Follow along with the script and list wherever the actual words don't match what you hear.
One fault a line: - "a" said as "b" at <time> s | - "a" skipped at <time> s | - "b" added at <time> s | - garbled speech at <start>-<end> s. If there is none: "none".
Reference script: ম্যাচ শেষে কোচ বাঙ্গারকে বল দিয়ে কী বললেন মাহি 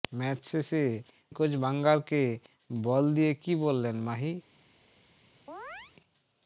none